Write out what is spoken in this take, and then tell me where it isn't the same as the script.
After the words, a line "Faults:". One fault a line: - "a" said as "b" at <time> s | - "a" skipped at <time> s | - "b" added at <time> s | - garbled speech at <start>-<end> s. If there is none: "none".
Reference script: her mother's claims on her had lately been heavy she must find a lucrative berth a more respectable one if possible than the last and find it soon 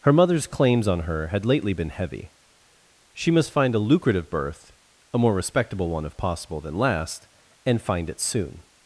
her mother's claims on her had lately been heavy she must find a lucrative berth a more respectable one if possible than last and find it soon
Faults:
- "the" skipped at 6.8 s